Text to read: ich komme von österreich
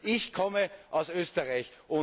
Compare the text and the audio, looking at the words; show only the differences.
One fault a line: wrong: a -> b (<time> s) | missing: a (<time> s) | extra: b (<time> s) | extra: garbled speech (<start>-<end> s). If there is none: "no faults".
wrong: von -> aus (0.9 s)